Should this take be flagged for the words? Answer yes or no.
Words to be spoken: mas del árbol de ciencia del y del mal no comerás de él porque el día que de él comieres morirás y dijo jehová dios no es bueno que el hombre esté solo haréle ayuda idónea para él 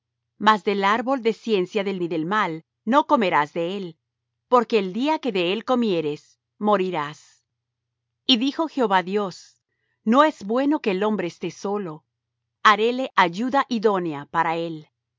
no